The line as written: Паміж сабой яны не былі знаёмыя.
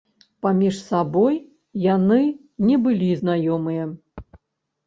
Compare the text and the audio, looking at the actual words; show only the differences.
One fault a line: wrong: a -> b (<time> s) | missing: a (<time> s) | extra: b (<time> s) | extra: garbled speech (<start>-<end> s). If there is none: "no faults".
no faults